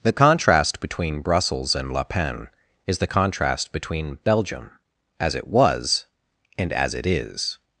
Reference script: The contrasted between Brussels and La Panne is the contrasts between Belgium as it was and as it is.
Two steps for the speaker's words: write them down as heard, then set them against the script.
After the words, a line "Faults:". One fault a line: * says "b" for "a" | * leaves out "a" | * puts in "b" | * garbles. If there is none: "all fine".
The contrast between Brussels and La Panne is the contrast between Belgium as it was and as it is.
Faults:
* says "contrast" for "contrasted"
* says "contrast" for "contrasts"